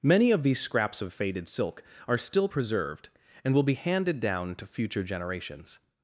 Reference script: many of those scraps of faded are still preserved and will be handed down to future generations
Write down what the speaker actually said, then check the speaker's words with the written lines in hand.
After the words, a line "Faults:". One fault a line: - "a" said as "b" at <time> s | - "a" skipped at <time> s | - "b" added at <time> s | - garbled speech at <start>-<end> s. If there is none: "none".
many of these scraps of faded silk are still preserved and will be handed down to future generations
Faults:
- "those" said as "these" at 0.4 s
- "silk" added at 1.5 s